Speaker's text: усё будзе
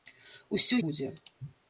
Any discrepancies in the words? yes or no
no